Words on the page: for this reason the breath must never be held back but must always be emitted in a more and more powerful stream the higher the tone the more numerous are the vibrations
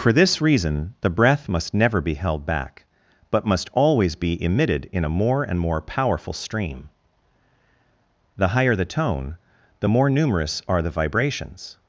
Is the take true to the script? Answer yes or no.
yes